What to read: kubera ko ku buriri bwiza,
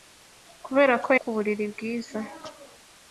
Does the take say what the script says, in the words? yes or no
yes